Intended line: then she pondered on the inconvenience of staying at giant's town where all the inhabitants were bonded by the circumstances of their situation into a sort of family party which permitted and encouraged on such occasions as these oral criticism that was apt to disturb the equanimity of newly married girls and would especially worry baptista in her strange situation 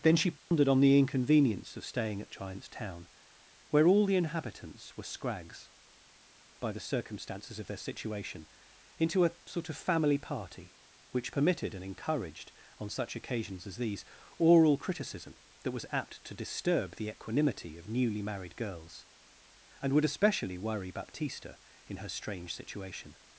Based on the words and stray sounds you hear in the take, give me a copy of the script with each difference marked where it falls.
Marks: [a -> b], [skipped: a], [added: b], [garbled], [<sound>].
then she pondered [dropout] on the inconvenience of staying at giant's town where all the inhabitants were [bonded -> scrags] by the circumstances of their situation into a sort of family party which permitted and encouraged on such occasions as these oral criticism that was apt to disturb the equanimity of newly married girls and would especially worry baptista in her strange situation